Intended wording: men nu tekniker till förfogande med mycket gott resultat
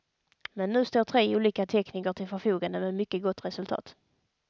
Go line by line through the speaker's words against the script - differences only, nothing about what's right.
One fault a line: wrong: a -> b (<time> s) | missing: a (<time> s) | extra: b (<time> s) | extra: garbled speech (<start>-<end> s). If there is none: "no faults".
extra: står tre olika (0.8 s)